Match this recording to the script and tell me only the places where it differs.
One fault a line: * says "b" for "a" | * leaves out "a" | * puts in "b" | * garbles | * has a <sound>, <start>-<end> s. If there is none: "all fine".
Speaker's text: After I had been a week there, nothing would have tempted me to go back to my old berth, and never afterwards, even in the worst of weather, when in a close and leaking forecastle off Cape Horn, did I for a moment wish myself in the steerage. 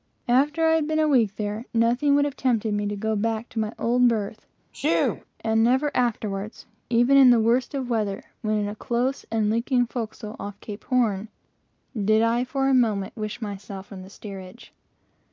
* has a sneeze, 4.7-5.3 s